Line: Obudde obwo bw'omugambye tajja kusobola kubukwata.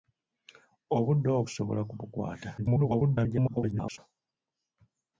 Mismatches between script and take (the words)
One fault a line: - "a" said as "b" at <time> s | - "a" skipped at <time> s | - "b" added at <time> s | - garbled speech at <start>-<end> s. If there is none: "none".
- "bw'omugambye tajja" skipped at 1.4 s
- garbled speech at 2.6-4.0 s